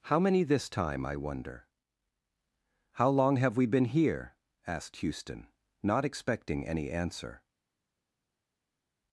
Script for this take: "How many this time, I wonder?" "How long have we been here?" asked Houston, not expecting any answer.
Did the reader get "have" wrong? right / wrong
right